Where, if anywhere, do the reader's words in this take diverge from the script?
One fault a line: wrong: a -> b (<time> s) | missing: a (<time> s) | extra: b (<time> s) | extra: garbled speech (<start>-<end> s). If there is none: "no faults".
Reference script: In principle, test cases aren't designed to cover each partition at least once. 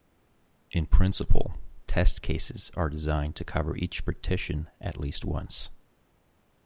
wrong: aren't -> are (2.8 s)